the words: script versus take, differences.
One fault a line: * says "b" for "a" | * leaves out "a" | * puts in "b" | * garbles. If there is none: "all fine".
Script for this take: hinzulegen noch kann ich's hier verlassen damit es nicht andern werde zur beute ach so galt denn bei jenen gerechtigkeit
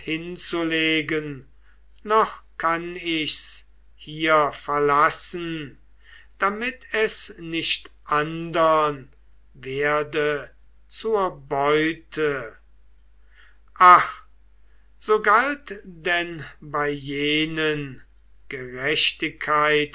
all fine